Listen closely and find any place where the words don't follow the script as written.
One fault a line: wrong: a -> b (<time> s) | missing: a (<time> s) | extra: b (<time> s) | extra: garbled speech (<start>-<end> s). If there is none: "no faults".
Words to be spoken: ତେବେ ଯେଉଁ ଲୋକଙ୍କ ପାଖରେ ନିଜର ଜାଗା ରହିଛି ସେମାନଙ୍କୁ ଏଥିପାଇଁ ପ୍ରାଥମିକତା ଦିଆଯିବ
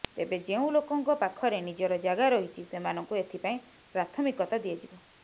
no faults